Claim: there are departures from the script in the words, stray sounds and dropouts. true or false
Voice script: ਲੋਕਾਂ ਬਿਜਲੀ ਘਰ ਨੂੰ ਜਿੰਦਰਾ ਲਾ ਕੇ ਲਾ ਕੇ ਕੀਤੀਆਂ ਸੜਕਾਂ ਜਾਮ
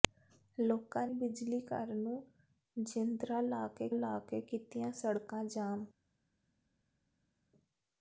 false